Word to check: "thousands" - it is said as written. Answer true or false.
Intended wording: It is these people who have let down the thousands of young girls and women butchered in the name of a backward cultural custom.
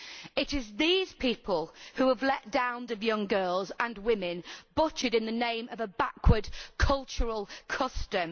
false